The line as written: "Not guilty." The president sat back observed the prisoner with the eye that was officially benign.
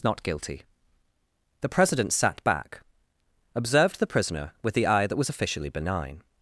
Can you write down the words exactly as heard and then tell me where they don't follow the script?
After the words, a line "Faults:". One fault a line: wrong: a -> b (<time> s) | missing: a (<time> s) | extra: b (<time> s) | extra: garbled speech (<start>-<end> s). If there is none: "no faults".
"Not guilty." The president sat back observed the prisoner with the eye that was officially benign.
Faults:
no faults